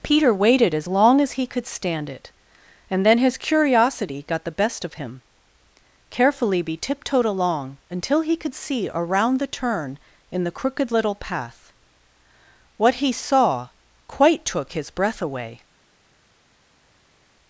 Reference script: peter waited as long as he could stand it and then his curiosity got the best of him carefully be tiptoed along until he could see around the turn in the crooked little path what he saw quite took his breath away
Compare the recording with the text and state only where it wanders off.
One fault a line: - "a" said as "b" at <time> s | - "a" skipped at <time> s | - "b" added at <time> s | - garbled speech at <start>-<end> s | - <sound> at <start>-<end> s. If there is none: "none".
none